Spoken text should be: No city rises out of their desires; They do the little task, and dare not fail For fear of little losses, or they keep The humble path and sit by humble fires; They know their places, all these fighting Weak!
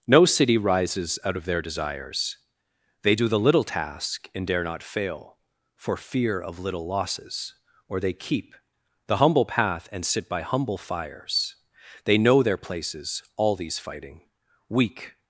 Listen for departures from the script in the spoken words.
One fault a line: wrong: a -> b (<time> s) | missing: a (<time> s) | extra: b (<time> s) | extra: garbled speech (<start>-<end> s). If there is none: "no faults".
no faults